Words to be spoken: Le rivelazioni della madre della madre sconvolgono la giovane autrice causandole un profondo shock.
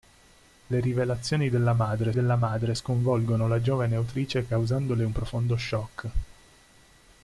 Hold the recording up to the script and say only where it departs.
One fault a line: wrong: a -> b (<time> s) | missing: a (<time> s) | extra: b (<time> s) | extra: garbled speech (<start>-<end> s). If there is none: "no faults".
no faults